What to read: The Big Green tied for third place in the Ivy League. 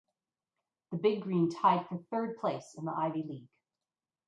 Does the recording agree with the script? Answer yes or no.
yes